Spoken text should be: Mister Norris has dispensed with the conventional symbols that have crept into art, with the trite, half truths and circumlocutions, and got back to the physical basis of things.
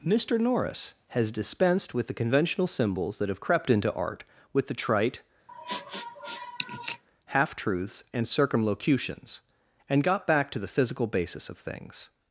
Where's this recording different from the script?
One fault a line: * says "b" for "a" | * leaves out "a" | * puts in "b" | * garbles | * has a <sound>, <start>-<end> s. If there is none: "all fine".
* has a sniff, 5.5-7.0 s